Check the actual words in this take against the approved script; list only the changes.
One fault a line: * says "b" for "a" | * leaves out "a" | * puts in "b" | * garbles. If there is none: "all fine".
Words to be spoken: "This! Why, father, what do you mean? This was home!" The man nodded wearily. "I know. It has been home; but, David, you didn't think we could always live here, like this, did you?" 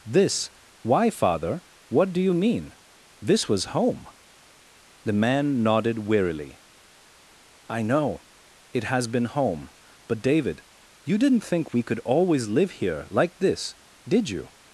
all fine